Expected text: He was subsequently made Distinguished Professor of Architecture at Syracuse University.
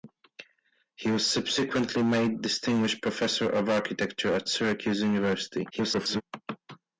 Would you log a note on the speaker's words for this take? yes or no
yes